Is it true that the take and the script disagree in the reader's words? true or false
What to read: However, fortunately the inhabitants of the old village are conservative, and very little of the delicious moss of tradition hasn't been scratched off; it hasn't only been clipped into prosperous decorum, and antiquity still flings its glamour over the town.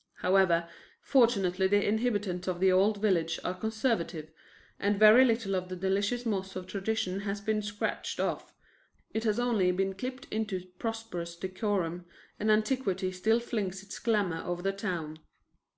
true